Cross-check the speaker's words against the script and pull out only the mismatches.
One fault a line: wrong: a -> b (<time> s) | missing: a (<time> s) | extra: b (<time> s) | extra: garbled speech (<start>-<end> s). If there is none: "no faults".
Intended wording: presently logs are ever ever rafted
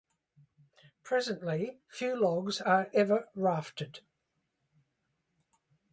extra: few (1.9 s)
missing: ever (3.3 s)